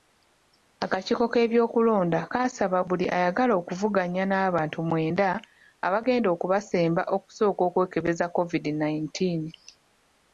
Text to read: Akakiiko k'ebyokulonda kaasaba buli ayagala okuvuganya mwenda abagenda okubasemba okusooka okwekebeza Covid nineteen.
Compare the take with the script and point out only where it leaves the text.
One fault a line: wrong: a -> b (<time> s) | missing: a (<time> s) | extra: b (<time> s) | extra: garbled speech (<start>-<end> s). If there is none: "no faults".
extra: n'abantu (4.3 s)